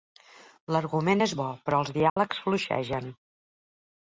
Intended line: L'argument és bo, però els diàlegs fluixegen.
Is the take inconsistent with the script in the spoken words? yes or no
no